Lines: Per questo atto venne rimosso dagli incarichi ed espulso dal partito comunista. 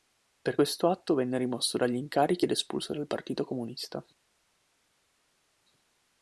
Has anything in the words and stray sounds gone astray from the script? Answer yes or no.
no